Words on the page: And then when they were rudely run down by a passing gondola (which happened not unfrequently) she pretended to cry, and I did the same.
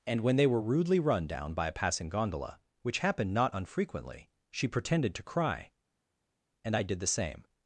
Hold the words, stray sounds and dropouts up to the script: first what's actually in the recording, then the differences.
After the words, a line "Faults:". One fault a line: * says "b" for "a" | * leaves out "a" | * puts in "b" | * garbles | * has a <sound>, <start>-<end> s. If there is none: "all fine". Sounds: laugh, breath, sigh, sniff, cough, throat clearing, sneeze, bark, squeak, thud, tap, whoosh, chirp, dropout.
And when they were rudely run down by a passing gondola (which happened not unfrequently) she pretended to cry, and I did the same.
Faults:
* leaves out "then"